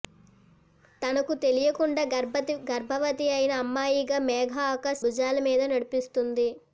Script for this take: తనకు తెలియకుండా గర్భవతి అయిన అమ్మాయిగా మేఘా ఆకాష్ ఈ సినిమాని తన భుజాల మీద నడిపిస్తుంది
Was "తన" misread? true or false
true